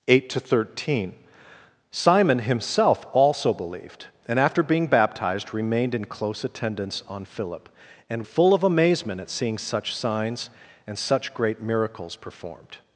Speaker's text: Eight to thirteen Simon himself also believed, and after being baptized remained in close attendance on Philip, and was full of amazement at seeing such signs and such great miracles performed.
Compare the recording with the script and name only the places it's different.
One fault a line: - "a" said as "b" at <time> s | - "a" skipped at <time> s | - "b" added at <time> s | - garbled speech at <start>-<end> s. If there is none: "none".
- "was" skipped at 8.3 s